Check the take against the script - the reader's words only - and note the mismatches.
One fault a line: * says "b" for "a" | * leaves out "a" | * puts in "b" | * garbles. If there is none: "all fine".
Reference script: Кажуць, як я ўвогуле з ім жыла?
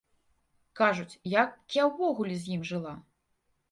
all fine